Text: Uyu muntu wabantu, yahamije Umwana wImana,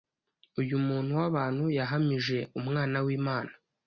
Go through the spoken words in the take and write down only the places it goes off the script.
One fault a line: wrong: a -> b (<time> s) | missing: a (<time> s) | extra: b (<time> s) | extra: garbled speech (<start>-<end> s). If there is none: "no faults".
no faults